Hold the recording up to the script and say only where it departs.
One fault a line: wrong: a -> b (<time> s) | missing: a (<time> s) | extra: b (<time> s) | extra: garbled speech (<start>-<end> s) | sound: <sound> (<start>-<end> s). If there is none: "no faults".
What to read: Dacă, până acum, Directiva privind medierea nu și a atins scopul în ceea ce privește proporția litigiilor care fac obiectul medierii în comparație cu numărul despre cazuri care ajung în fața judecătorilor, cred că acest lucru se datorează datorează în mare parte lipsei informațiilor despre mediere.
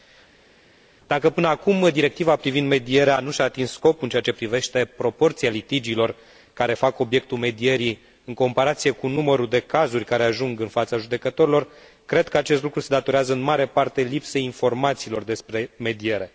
wrong: despre -> de (9.5 s)
missing: datorează (13.3 s)